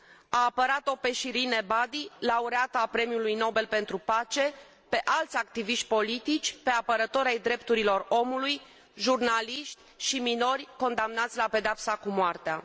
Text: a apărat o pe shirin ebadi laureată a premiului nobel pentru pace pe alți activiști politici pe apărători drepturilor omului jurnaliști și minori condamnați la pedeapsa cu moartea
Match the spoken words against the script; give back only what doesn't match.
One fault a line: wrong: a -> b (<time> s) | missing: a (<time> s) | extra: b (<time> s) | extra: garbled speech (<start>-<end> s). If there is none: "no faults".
extra: ai (7.3 s)